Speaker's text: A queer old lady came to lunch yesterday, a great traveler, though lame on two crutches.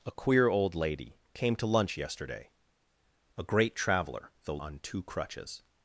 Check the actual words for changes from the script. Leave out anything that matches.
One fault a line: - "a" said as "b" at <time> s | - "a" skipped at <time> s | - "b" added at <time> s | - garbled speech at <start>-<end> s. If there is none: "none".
- "lame" skipped at 4.6 s